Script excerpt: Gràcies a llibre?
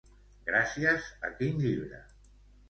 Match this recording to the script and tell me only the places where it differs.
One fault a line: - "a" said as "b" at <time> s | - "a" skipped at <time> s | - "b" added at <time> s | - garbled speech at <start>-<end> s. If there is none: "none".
- "quin" added at 1.4 s